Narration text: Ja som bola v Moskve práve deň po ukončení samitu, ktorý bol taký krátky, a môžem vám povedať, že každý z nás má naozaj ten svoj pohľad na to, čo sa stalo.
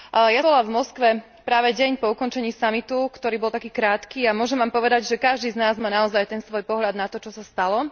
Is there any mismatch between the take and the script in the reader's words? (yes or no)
yes